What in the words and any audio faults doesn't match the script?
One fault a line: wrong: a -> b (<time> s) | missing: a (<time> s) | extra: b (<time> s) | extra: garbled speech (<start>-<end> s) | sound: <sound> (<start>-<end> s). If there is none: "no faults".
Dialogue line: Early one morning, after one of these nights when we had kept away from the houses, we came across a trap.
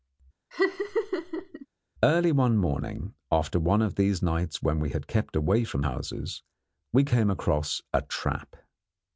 sound: laugh (0.5-1.7 s)
missing: the (5.8 s)